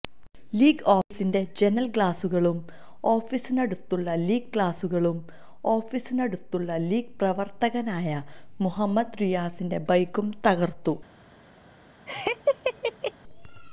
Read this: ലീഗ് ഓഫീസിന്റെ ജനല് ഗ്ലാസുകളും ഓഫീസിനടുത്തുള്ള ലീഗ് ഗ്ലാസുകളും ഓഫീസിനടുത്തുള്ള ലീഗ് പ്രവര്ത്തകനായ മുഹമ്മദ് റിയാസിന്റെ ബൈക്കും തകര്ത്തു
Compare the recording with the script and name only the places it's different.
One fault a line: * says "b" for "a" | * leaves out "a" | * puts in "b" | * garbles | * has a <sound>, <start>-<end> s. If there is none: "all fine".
* has a laugh, 12.1-13.1 s